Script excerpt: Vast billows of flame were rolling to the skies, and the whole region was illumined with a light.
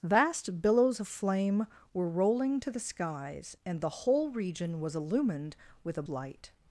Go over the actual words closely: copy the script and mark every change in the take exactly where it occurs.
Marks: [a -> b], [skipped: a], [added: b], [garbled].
Vast billows of flame were rolling to the skies, and the whole region was illumined with a light.